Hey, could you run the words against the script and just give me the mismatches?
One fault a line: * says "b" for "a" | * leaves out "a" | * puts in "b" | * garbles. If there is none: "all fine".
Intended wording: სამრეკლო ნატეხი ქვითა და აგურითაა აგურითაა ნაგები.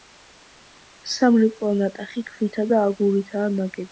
* leaves out "აგურითაა"